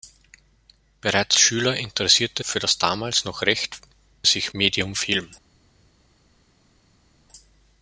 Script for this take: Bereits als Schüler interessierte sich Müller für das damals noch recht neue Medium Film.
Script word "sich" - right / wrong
wrong